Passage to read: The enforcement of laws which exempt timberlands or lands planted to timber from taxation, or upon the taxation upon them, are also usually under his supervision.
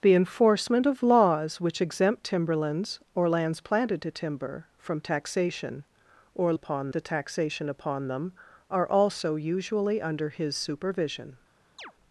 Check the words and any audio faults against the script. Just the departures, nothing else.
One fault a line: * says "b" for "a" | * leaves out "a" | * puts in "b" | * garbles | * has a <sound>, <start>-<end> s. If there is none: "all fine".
* has a chirp, 11.8-11.9 s